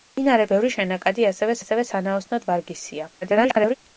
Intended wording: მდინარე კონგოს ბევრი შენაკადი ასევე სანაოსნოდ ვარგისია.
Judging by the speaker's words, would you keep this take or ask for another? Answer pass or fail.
fail